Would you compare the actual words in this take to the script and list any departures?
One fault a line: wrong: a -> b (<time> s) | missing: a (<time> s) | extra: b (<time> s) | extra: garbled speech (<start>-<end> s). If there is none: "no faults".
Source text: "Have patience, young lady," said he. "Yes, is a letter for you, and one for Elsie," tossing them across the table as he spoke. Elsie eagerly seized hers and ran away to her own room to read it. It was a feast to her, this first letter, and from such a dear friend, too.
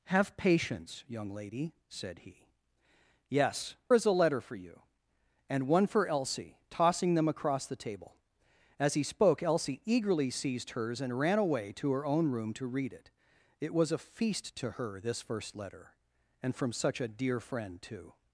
no faults